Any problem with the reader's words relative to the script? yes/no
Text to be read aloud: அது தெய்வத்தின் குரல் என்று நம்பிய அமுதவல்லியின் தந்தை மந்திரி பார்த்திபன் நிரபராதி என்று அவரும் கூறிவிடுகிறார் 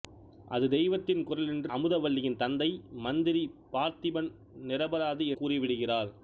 yes